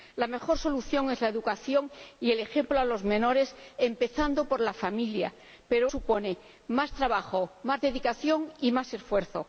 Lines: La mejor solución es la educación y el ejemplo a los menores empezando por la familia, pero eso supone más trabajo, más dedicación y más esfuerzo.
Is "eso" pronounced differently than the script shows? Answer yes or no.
yes